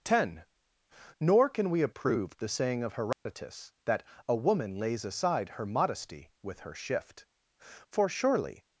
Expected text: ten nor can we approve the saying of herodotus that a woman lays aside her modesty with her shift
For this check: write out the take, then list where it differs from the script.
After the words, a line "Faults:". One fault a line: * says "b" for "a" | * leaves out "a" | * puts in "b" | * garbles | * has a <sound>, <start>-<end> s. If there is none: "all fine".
ten nor can we approve the saying of herodotus that a woman lays aside her modesty with her shift for surely
Faults:
* has a dropout, 3.1-3.3 s
* puts in "for surely"